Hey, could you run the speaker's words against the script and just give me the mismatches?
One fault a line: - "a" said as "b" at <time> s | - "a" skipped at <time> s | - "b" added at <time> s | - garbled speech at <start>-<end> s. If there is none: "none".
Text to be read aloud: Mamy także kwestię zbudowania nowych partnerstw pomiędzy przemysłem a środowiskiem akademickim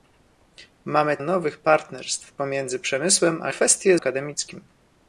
- "także kwestię zbudowania" skipped at 1.2 s
- "środowiskiem" said as "kwestię" at 3.5 s